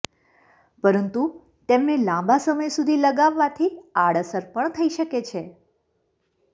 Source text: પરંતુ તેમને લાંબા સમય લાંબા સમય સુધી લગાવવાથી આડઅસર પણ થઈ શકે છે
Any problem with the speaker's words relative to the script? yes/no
yes